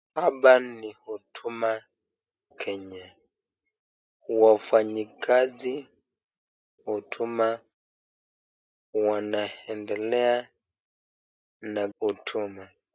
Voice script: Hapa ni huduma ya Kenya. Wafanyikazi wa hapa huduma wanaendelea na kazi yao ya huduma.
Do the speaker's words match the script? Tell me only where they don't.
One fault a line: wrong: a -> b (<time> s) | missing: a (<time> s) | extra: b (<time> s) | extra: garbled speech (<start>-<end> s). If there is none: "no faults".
missing: ya (1.8 s)
missing: wa hapa (5.9 s)
missing: kazi yao ya (11.9 s)